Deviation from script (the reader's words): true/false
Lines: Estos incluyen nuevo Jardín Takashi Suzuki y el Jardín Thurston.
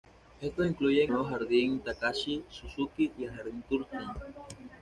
false